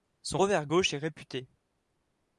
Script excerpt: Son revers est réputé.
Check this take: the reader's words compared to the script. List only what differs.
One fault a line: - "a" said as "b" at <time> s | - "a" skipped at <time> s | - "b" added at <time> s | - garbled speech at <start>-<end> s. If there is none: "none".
- "gauche" added at 0.6 s